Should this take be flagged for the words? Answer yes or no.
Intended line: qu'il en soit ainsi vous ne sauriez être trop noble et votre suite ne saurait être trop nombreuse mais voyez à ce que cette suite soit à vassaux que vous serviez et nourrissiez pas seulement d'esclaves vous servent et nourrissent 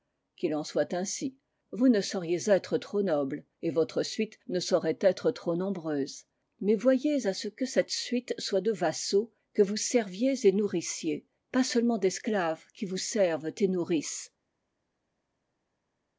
yes